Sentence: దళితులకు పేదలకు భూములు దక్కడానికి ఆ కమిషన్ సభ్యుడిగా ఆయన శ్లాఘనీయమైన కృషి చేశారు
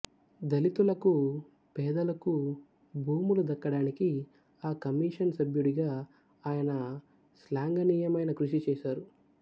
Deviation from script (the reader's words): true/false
false